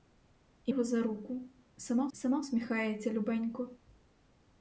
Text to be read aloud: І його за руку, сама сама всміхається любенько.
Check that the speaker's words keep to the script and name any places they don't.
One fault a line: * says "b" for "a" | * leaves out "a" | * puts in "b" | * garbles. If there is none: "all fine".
all fine